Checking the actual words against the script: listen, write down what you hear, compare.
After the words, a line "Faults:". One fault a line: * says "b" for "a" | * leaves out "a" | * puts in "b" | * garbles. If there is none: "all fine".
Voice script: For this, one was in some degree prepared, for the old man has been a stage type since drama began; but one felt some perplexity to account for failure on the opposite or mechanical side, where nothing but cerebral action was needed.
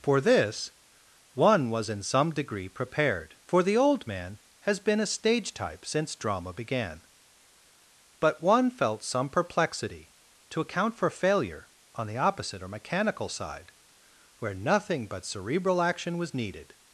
For this, one was in some degree prepared, for the old man has been a stage type since drama began; but one felt some perplexity to account for failure on the opposite or mechanical side, where nothing but cerebral action was needed.
Faults:
all fine